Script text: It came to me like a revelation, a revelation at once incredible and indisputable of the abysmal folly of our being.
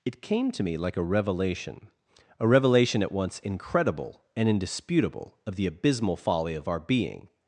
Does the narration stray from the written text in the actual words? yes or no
no